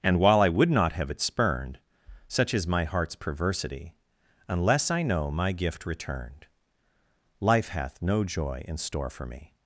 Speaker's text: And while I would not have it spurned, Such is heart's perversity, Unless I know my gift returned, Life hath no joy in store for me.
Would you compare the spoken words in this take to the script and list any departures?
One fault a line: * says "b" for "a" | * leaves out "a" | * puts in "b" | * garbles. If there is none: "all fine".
* puts in "my"